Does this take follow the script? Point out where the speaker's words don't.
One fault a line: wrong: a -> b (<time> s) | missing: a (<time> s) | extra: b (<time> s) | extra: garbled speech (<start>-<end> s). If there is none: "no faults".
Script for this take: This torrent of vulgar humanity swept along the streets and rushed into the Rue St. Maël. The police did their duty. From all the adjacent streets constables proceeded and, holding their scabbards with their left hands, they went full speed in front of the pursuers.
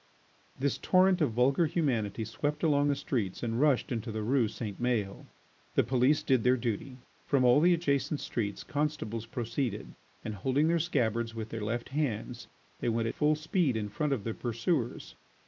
no faults